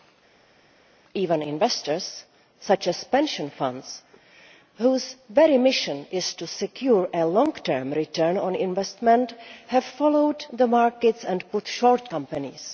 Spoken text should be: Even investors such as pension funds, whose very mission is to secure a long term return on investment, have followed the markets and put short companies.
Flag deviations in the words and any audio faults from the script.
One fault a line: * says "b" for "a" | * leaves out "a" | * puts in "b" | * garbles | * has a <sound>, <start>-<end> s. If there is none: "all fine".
all fine